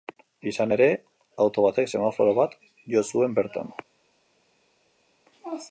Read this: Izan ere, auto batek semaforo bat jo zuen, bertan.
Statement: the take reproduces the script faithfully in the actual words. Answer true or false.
true